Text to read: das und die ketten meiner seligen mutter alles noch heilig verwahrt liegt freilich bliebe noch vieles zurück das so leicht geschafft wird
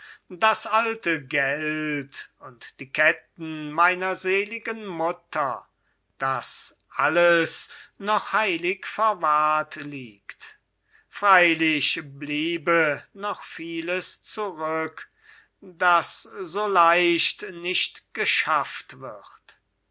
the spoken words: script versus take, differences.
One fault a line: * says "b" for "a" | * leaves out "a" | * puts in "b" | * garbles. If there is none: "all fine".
* puts in "alte geld"
* puts in "das"
* puts in "nicht"